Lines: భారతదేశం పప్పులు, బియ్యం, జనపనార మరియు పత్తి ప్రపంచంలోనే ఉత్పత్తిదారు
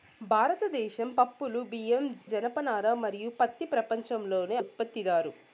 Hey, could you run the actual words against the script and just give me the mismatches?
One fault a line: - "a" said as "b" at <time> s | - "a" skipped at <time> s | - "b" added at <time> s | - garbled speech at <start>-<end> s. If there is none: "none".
none